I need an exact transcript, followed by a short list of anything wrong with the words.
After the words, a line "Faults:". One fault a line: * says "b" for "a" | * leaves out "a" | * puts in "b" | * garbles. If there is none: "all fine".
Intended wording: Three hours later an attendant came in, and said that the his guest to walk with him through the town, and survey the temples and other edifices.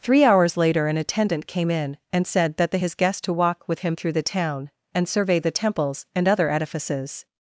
Three hours later an attendant came in, and said that the his guest to walk with him through the town, and survey the temples and other edifices.
Faults:
all fine